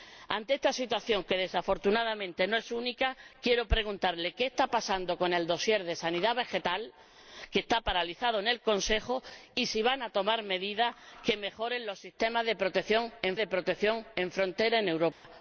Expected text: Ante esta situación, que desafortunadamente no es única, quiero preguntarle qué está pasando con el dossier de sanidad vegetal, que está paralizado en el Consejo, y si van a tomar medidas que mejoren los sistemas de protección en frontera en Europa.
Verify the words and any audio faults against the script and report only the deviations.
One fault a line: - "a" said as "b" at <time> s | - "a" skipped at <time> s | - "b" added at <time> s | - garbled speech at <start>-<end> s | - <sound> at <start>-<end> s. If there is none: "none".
- "de protección en" added at 13.4 s
- dropout at 15.1-15.2 s